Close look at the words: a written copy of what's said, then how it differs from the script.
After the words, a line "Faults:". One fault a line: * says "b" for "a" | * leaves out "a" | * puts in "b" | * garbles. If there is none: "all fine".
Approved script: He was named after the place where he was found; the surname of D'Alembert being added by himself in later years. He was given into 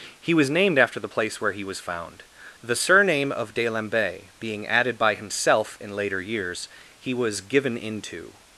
He was named after the place where he was found; the surname of D'Alembert being added by himself in later years. He was given into
Faults:
all fine